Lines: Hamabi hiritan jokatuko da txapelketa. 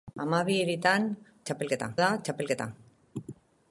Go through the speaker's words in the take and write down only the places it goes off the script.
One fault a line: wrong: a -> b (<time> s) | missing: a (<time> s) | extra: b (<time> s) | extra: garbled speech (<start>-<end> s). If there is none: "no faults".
wrong: jokatuko -> txapelketa (1.5 s)